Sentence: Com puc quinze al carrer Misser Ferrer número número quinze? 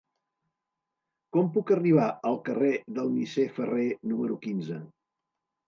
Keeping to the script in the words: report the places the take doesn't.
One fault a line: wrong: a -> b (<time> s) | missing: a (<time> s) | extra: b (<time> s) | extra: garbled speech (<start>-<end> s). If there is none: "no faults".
wrong: quinze -> arribar (1.8 s)
extra: del (3.0 s)
missing: número (4.4 s)